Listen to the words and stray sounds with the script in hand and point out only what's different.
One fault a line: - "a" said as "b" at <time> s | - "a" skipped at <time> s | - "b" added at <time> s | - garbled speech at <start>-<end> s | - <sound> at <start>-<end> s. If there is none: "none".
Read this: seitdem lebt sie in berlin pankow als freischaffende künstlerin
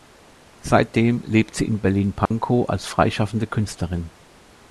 - dropout at 2.3-2.3 s